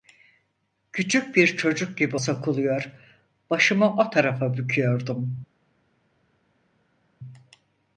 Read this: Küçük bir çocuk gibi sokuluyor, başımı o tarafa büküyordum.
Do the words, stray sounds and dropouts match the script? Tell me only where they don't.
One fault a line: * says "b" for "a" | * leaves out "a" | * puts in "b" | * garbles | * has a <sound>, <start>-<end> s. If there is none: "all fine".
all fine